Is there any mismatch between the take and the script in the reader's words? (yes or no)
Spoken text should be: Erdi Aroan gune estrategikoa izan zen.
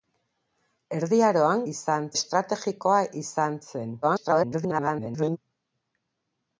yes